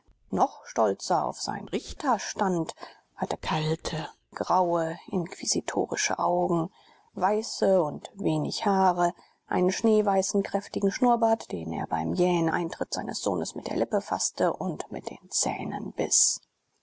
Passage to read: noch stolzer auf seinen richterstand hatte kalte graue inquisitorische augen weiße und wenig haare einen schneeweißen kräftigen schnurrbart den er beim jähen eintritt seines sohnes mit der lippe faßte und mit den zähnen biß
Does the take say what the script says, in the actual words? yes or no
yes